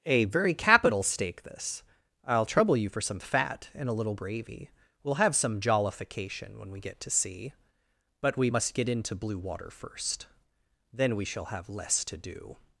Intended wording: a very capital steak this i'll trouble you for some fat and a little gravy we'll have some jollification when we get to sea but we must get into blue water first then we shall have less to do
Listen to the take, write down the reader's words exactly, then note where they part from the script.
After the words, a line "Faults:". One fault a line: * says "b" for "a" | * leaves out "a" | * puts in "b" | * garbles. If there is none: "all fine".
a very capital steak this i'll trouble you for some fat and a little gravy we'll have some jollification when we get to sea but we must get into blue water first then we shall have less to do
Faults:
all fine